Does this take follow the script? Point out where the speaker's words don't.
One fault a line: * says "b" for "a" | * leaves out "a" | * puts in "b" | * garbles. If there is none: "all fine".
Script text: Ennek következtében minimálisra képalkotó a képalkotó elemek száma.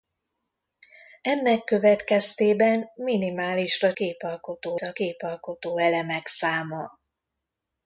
all fine